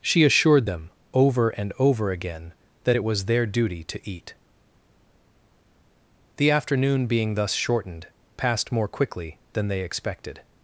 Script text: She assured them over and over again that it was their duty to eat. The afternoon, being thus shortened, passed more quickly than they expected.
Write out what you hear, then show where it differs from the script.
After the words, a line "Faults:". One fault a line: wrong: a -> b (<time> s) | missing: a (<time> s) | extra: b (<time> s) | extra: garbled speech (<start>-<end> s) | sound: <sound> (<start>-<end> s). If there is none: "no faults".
She assured them over and over again that it was their duty to eat. The afternoon, being thus shortened, passed more quickly than they expected.
Faults:
no faults